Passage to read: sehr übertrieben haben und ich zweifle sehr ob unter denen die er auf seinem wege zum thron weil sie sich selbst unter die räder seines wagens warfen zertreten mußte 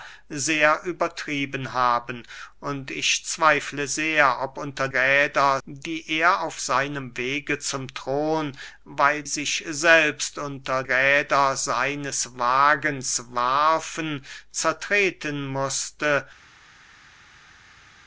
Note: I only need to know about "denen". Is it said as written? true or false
false